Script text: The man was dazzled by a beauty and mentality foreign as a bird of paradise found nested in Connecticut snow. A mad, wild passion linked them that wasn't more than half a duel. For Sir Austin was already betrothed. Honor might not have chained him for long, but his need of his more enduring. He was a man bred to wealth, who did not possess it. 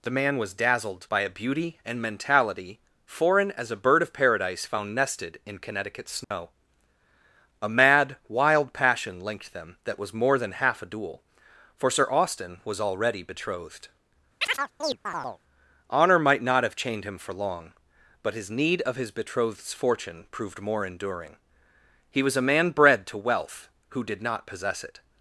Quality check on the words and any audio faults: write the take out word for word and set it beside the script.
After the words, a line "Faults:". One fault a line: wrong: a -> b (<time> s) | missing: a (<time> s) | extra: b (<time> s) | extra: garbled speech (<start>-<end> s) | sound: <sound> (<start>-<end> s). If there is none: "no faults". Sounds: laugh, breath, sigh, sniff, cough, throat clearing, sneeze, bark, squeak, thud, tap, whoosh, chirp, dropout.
The man was dazzled by a beauty and mentality foreign as a bird of paradise found nested in Connecticut snow. A mad, wild passion linked them that was more than half a duel. For Sir Austin was already betrothed. Honor might not have chained him for long, but his need of his betrothed's fortune proved more enduring. He was a man bred to wealth, who did not possess it.
Faults:
sound: dropout (6.2-6.3 s)
wrong: wasn't -> was (10.0 s)
sound: chirp (14.4-15.4 s)
extra: betrothed's fortune proved (19.1 s)